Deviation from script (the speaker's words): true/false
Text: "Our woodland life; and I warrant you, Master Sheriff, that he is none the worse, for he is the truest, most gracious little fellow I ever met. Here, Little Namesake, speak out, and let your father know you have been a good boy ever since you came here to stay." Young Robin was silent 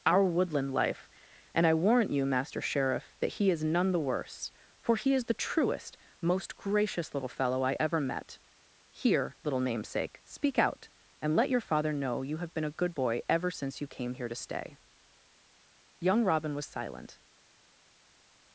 false